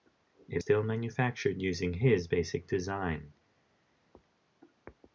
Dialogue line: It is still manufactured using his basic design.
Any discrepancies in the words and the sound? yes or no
yes